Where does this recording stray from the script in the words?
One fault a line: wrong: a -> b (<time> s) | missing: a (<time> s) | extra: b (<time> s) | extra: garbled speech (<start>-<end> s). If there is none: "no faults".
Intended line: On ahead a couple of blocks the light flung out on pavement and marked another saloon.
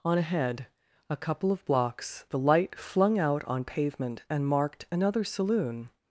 no faults